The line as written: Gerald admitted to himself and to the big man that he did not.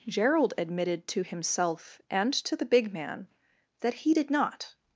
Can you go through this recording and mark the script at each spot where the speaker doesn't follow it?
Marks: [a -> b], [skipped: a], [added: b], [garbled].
Gerald admitted to himself and to the big man that he did not.